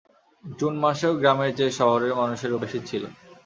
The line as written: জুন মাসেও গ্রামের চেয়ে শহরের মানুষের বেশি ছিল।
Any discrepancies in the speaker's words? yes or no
no